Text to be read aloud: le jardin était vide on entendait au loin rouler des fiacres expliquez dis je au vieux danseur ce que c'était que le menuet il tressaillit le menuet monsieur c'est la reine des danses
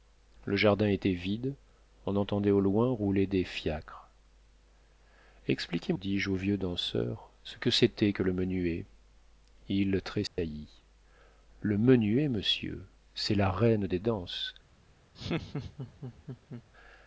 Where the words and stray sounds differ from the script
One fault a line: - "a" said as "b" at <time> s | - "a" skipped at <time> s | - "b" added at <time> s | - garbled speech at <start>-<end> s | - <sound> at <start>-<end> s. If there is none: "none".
- dropout at 10.3-10.4 s
- laugh at 15.1-16.6 s